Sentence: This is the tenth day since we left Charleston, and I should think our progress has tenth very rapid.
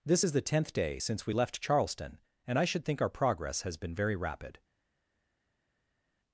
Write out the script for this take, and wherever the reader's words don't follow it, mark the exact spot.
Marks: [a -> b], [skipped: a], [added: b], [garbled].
This is the tenth day since we left Charleston, and I should think our progress has [tenth -> been] very rapid.